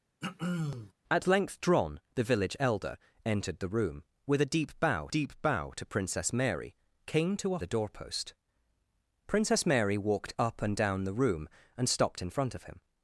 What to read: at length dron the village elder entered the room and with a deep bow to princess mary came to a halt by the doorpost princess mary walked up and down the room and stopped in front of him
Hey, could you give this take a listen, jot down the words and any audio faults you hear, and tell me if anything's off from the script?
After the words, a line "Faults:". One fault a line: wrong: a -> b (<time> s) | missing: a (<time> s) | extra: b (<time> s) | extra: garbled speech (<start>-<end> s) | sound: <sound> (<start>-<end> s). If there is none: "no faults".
at length dron the village elder entered the room with a deep bow deep bow to princess mary came to a the doorpost princess mary walked up and down the room and stopped in front of him
Faults:
sound: throat clearing (0.2-0.9 s)
missing: and (4.0 s)
extra: deep bow (5.1 s)
missing: halt by (7.6 s)